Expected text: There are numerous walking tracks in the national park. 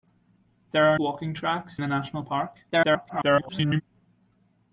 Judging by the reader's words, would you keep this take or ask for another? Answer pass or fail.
fail